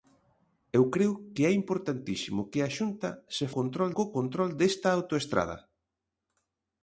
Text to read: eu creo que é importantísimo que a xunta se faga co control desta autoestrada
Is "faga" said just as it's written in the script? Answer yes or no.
no